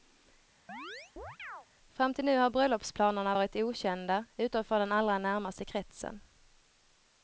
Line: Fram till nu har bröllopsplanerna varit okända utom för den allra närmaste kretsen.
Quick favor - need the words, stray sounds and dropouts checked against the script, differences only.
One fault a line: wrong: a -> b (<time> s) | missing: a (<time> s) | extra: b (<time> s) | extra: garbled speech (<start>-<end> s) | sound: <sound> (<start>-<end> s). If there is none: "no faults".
sound: chirp (0.7-1.7 s)